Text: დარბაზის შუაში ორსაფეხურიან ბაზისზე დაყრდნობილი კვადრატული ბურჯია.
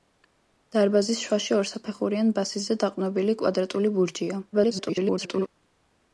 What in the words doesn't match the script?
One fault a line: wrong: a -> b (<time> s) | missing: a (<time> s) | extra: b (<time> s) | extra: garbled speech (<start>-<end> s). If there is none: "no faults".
extra: garbled speech (4.5-5.5 s)